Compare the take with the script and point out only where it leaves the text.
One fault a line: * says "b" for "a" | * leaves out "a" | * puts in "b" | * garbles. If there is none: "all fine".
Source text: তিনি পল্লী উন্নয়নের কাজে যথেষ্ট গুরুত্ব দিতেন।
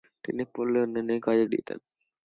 * leaves out "যথেষ্ট গুরুত্ব"